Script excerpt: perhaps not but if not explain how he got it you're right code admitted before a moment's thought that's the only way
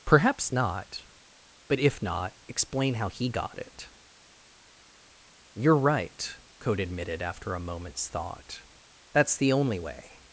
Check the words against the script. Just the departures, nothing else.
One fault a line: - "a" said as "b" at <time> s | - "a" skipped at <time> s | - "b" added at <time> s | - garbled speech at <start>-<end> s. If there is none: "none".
- "before" said as "after" at 7.2 s